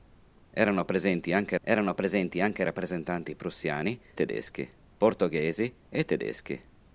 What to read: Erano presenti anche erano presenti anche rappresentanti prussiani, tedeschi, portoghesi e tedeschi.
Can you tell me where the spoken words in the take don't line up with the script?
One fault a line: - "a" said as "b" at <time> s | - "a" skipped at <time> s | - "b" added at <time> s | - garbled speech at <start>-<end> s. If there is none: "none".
none